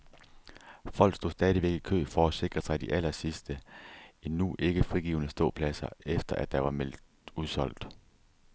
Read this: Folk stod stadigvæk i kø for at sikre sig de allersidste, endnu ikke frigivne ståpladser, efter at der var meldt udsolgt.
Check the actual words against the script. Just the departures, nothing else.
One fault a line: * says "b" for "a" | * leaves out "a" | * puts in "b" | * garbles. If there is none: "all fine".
all fine